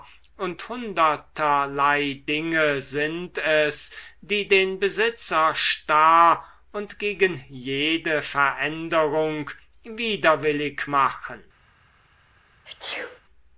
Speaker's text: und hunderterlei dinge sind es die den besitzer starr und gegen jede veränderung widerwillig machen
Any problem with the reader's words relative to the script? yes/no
no